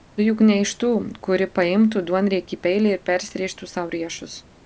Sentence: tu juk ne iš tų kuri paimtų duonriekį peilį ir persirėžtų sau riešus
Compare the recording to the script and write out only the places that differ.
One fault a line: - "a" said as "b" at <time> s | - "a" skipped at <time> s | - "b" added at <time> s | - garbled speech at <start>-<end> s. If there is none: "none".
none